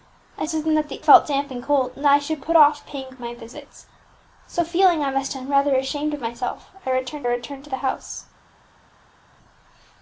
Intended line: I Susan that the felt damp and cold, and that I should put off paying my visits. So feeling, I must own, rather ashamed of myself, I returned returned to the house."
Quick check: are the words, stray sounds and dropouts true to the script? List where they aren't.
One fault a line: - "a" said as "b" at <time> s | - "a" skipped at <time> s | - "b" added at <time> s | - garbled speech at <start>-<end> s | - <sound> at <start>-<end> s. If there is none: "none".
none